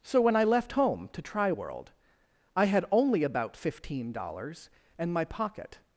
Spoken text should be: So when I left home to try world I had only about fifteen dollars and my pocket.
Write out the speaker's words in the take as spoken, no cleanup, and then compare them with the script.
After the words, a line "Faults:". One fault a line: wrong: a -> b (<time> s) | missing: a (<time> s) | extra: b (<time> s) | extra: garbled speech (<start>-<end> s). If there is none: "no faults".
So when I left home to try world I had only about fifteen dollars and my pocket.
Faults:
no faults